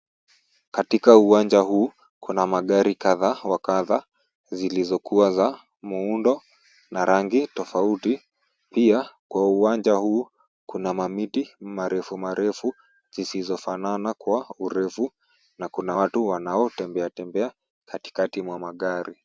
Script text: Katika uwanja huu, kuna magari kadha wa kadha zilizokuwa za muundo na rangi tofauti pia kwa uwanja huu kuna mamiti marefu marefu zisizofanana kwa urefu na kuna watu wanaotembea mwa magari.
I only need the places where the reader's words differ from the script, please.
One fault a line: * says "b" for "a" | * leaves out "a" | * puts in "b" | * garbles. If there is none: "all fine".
* puts in "tembea katikati"